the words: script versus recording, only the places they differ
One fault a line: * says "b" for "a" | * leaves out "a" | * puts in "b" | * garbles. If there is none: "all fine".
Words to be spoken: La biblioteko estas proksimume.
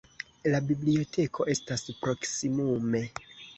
all fine